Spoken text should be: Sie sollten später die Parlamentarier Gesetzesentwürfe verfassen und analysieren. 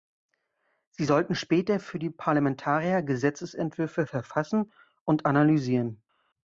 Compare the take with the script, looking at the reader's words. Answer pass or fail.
fail